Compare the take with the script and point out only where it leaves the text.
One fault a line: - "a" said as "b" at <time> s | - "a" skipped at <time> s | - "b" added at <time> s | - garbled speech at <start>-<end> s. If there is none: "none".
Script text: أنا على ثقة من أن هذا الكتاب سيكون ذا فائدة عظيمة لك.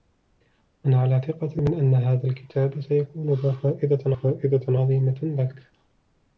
- "فائدة" added at 4.1 s